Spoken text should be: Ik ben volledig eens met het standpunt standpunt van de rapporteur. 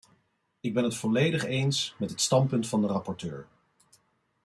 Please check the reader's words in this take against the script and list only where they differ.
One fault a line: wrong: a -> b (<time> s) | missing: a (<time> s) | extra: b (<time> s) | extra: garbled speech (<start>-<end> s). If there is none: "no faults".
extra: het (0.8 s)
missing: standpunt (2.7 s)